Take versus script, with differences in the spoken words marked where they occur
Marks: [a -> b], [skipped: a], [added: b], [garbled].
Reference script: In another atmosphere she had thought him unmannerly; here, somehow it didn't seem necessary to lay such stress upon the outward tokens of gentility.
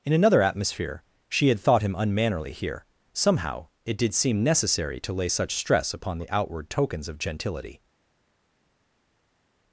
In another atmosphere she had thought him unmannerly; here, somehow it [didn't -> did] seem necessary to lay such stress upon the outward tokens of gentility.